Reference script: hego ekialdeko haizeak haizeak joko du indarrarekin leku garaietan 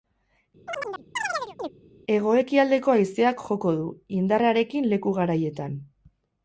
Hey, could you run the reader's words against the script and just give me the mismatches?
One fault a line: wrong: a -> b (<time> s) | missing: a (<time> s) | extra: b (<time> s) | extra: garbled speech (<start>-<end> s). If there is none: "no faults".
missing: haizeak (3.4 s)